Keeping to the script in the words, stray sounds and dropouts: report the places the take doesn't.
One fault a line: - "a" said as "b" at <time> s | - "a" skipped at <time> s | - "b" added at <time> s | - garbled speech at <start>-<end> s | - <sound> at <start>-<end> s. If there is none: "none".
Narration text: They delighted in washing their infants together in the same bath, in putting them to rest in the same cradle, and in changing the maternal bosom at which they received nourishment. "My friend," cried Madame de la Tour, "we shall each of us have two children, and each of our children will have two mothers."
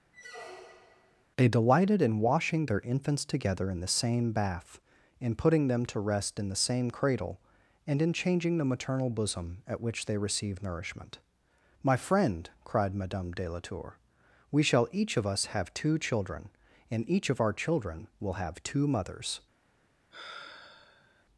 - squeak at 0.1-1.2 s
- "received" said as "receive" at 10.2 s
- sigh at 20.1-21.2 s